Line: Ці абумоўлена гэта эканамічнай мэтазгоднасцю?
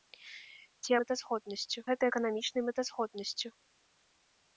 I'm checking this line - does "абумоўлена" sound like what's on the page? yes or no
no